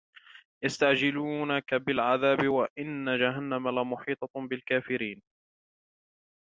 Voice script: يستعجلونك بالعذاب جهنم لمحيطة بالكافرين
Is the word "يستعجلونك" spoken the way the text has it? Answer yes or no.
yes